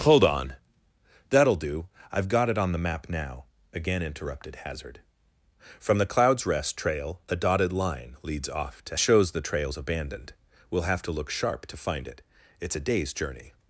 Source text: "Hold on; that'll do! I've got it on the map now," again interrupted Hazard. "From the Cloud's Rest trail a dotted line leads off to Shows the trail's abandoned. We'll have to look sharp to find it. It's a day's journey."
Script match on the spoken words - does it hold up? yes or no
yes